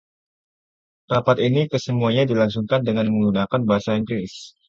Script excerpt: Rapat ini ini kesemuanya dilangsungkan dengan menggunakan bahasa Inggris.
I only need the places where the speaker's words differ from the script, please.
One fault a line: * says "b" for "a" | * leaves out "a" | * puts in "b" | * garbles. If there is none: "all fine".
* leaves out "ini"